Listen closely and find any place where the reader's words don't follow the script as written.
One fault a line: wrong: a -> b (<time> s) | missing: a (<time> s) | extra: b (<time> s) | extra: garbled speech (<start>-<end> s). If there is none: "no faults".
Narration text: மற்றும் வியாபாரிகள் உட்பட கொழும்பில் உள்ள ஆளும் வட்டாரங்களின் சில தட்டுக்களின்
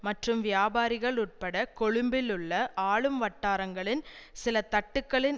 no faults